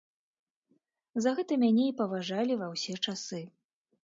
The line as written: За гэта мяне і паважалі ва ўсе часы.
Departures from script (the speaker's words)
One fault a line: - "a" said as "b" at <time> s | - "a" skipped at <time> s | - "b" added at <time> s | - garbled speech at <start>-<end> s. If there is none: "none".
none